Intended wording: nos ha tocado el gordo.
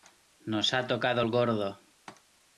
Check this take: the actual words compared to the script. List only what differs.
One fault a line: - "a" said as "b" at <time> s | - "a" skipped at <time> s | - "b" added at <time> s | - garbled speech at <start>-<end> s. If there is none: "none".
none